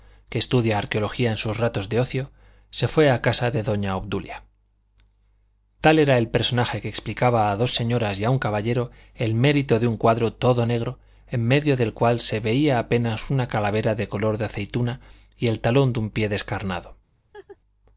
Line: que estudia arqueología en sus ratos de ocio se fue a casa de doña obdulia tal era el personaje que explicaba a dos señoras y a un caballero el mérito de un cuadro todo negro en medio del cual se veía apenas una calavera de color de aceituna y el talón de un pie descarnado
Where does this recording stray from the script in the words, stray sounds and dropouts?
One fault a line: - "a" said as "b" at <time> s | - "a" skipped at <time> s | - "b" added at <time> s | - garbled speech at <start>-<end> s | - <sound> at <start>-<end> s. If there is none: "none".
- laugh at 17.3-17.6 s